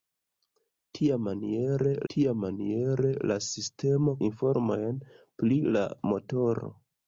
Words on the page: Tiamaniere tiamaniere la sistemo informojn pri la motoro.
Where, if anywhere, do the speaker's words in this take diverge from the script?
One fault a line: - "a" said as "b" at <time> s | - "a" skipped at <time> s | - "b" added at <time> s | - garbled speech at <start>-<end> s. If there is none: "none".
none